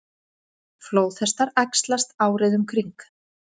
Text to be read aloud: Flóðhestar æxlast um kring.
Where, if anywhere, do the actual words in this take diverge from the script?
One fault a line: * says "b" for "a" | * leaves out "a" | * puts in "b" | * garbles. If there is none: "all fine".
* puts in "árið"